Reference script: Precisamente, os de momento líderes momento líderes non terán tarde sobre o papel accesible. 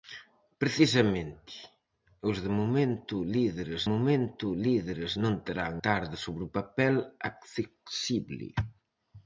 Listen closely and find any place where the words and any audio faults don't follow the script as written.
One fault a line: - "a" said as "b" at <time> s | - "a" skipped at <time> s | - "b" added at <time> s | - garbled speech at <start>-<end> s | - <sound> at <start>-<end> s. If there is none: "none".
none